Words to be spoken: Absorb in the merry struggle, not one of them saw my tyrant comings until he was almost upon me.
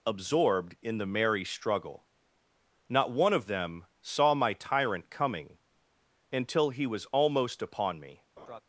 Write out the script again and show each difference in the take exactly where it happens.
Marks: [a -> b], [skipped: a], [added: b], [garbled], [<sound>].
[Absorb -> Absorbed] in the merry struggle, not one of them saw my tyrant [comings -> coming] until he was almost upon me. [laugh]